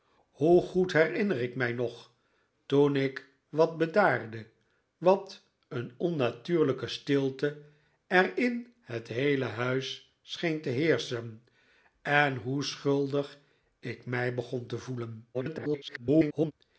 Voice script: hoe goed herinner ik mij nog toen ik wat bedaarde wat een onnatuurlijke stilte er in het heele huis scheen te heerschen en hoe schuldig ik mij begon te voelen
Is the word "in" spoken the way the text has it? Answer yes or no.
yes